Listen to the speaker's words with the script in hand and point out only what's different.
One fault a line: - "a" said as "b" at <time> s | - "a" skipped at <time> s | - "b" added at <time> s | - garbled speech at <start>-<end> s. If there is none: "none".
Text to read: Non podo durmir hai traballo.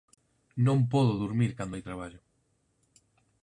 - "cando" added at 1.6 s